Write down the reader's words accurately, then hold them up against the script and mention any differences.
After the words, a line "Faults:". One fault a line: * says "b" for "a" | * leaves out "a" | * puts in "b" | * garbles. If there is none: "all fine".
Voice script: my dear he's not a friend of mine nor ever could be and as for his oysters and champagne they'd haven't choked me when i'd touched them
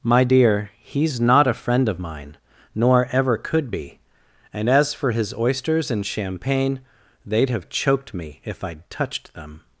my dear he's not a friend of mine nor ever could be and as for his oysters and champagne they'd have choked me if i'd touched them
Faults:
* says "have" for "haven't"
* says "if" for "when"